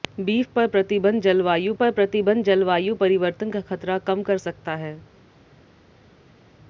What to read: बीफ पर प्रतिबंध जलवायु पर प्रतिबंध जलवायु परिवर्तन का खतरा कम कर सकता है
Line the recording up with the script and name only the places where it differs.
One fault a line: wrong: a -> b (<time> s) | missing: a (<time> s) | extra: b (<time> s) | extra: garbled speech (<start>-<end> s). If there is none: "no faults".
no faults